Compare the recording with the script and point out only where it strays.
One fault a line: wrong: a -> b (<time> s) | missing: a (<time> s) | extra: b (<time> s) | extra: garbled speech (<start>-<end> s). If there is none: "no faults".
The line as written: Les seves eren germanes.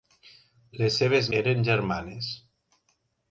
no faults